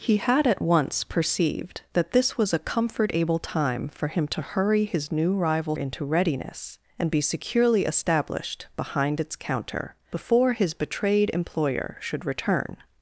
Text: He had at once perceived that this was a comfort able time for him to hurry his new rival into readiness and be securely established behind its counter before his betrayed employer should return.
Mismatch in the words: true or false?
false